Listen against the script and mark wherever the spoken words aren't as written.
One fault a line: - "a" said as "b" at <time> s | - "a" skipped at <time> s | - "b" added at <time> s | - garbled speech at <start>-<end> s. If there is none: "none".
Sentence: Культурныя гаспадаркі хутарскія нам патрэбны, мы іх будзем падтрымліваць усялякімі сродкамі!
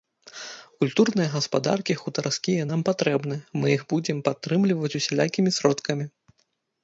none